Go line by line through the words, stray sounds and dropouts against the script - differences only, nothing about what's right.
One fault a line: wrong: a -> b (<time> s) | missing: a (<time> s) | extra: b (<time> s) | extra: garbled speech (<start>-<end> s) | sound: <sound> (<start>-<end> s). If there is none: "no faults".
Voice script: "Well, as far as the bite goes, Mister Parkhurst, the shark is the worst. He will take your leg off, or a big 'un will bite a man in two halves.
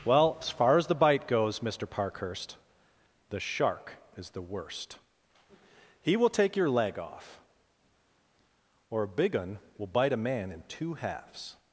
no faults